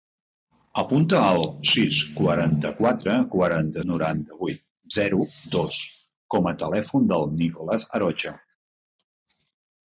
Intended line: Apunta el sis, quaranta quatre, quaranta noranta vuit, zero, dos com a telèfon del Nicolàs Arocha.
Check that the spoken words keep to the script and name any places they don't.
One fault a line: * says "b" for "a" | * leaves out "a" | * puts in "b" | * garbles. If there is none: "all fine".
all fine